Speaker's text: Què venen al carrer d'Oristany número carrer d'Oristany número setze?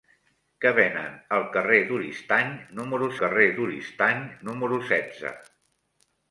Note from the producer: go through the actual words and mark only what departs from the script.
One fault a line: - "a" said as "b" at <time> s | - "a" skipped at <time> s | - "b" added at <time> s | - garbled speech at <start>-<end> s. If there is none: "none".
none